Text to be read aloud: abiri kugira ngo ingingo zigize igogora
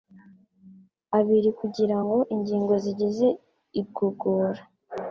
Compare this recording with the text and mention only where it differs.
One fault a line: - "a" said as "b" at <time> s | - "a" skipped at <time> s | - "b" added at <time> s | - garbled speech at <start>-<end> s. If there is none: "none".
none